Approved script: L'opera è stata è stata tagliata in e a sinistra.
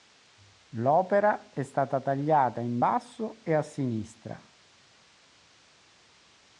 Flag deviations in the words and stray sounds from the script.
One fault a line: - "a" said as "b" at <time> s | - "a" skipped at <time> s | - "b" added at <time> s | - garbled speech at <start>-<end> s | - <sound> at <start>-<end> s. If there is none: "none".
- "è stata" skipped at 2.0 s
- "basso" added at 2.8 s